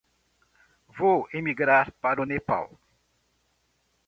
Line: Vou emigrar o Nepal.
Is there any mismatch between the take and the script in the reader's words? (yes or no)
yes